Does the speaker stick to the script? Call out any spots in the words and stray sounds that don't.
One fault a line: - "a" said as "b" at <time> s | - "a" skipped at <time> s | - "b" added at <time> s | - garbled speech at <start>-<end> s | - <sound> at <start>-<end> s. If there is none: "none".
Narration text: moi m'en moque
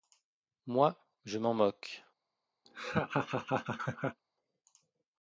- "je" added at 1.3 s
- laugh at 2.7-4.2 s